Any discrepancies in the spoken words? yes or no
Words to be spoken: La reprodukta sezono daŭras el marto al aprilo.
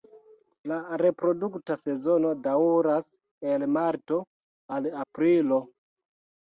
no